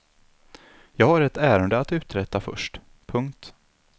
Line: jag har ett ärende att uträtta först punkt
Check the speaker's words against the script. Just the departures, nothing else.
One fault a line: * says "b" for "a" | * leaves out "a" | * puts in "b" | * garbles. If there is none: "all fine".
all fine